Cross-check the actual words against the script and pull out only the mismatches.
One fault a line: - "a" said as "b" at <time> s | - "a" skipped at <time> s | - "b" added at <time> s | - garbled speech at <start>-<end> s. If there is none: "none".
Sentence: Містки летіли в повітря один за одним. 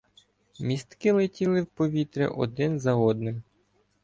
none